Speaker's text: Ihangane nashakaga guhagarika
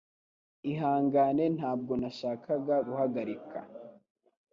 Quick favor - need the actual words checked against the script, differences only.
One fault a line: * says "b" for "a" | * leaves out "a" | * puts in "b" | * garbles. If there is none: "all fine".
* puts in "ntabwo"